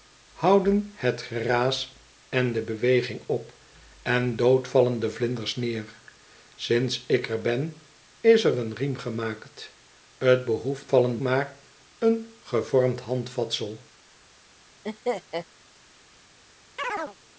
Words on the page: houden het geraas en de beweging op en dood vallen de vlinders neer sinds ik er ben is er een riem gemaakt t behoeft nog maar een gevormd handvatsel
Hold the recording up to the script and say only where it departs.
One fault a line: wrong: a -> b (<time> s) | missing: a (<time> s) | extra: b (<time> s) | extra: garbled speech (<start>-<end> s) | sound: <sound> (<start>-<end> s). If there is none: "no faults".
wrong: nog -> vallen (10.9 s)
sound: laugh (14.8-15.5 s)
sound: chirp (16.8-17.2 s)